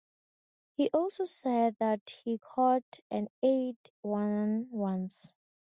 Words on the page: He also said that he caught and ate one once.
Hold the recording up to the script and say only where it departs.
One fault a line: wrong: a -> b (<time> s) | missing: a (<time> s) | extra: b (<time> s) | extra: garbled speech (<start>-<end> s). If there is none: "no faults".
no faults